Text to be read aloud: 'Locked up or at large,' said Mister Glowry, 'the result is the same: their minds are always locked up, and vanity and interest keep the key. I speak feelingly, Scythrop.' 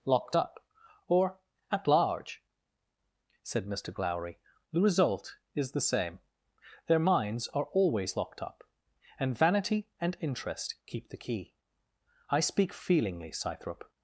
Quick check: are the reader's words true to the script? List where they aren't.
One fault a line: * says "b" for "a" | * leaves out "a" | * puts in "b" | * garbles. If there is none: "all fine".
all fine